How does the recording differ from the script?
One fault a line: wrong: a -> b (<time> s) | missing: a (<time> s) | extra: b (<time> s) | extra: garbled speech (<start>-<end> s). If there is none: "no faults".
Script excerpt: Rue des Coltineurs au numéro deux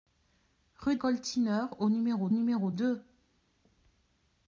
missing: des (0.9 s)
extra: numéro (2.3 s)